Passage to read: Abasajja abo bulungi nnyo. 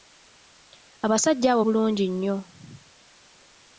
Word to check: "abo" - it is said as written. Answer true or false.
true